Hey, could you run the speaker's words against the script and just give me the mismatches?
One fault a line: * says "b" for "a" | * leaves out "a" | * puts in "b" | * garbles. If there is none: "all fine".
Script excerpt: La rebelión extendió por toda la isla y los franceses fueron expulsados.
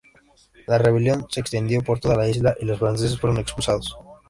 * puts in "se"